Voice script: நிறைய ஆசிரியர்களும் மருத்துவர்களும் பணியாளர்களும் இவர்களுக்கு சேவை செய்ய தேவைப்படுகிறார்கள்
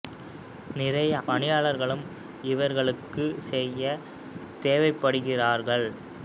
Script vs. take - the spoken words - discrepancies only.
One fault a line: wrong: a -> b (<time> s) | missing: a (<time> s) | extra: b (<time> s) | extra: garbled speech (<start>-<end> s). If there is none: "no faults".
missing: ஆசிரியர்களும் மருத்துவர்களும் (1.1 s)
missing: சேவை (3.2 s)